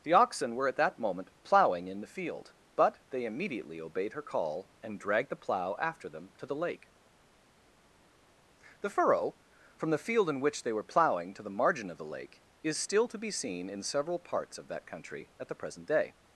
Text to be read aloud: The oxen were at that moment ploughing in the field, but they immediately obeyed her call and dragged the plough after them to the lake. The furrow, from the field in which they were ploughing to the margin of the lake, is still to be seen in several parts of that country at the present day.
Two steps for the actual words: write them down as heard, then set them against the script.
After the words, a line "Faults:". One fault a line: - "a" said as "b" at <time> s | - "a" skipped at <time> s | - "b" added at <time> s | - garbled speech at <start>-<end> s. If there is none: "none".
The oxen were at that moment ploughing in the field, but they immediately obeyed her call and dragged the plough after them to the lake. The furrow, from the field in which they were ploughing to the margin of the lake, is still to be seen in several parts of that country at the present day.
Faults:
none